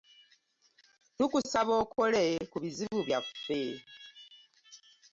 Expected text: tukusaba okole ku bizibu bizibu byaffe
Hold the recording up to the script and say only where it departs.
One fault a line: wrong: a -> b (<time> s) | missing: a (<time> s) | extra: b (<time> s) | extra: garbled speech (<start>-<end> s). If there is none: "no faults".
missing: bizibu (3.0 s)